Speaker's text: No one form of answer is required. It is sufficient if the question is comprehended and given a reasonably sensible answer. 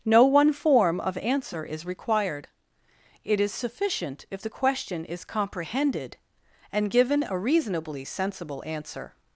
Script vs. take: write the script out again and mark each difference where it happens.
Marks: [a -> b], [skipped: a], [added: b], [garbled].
No one form of answer is required. It is sufficient if the question is comprehended and given a reasonably sensible answer.